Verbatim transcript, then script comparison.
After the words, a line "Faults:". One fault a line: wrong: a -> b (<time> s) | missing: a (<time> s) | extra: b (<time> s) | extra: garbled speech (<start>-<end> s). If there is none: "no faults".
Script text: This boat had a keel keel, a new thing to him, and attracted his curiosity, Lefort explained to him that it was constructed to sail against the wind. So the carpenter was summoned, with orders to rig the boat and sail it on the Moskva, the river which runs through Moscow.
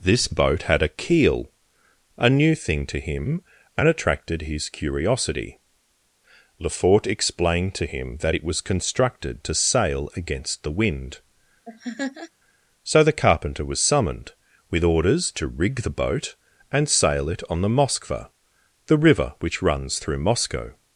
This boat had a keel, a new thing to him, and attracted his curiosity, Lefort explained to him that it was constructed to sail against the wind. So the carpenter was summoned, with orders to rig the boat and sail it on the Moskva, the river which runs through Moscow.
Faults:
missing: keel (1.5 s)